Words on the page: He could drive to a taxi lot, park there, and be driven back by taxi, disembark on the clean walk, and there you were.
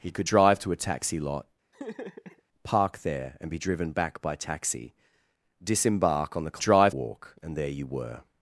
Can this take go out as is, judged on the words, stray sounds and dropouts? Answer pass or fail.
fail